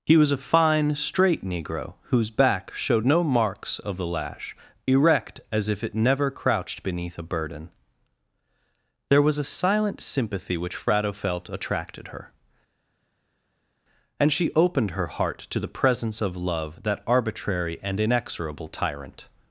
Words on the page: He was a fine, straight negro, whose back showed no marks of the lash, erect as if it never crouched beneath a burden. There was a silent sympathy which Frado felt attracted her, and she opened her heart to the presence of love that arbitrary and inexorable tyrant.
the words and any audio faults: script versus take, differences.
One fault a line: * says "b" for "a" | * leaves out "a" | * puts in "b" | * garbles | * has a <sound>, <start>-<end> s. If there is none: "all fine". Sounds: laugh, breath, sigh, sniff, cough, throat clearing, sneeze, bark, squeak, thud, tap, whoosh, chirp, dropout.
all fine